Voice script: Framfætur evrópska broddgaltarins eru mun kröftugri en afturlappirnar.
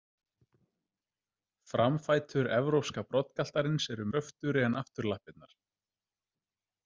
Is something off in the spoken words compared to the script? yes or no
yes